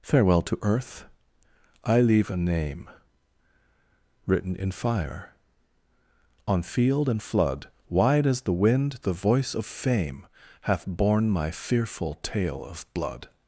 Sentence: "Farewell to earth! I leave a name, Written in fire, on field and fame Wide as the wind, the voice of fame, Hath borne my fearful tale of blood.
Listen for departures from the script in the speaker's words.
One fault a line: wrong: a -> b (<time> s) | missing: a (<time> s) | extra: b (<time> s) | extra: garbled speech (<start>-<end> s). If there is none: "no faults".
wrong: fame -> flood (7.2 s)